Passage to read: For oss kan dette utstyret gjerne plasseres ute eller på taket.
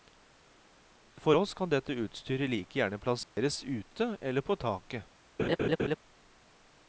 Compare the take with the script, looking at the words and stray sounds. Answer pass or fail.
fail